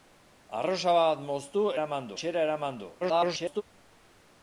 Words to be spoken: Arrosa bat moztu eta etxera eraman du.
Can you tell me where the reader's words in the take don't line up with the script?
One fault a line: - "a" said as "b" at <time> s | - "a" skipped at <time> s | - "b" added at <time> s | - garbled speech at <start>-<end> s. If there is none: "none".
- "eta" said as "eraman" at 1.8 s
- garbled speech at 3.0-3.6 s